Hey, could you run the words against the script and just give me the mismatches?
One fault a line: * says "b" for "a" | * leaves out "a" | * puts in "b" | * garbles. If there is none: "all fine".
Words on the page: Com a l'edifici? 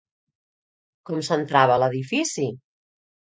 * puts in "s'entrava"